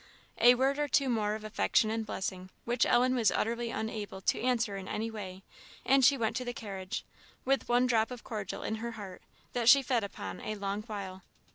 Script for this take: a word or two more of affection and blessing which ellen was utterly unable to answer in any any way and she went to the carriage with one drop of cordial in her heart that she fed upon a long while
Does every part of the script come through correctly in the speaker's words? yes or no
no